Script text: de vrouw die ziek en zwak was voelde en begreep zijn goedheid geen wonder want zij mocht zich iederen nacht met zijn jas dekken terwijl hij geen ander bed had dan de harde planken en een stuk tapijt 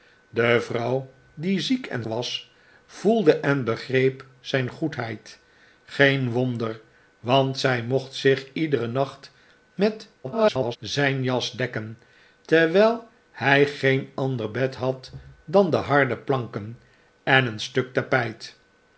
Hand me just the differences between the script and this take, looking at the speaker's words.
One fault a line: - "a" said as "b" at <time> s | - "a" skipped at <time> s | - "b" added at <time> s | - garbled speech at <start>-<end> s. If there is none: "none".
- "zwak" skipped at 2.0 s
- garbled speech at 10.2-10.8 s